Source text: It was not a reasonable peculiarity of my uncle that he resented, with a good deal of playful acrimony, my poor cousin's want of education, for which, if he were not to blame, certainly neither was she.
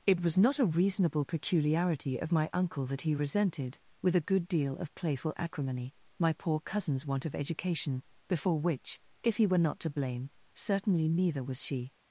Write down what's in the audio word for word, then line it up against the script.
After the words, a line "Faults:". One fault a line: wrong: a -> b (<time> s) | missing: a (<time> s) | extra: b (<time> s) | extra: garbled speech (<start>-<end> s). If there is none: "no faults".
It was not a reasonable peculiarity of my uncle that he resented, with a good deal of playful acrimony, my poor cousin's want of education, before which, if he were not to blame, certainly neither was she.
Faults:
wrong: for -> before (8.3 s)